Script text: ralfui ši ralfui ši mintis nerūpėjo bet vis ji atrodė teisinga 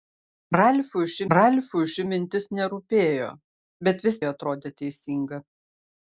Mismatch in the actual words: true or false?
false